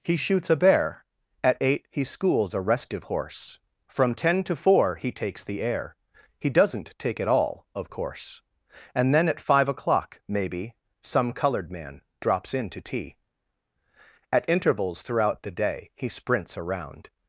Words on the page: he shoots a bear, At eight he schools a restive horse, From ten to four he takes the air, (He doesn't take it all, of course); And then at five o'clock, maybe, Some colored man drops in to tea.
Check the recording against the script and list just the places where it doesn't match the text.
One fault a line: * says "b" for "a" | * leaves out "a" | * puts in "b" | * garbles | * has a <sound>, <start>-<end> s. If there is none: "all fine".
* puts in "At intervals throughout the day He sprints around"